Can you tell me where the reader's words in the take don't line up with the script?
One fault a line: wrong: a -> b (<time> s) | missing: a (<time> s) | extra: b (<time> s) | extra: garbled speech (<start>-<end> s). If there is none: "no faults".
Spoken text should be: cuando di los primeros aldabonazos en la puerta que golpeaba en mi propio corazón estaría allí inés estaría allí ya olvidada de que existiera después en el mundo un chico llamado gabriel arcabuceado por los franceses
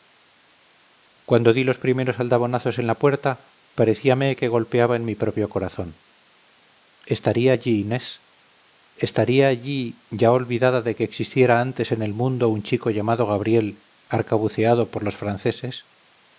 extra: parecíame (3.8 s)
wrong: después -> antes (11.6 s)